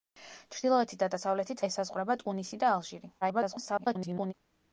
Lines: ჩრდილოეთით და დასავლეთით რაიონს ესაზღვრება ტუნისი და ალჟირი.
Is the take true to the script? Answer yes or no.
no